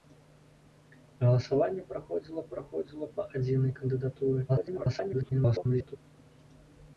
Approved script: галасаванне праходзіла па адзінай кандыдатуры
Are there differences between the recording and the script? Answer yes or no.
yes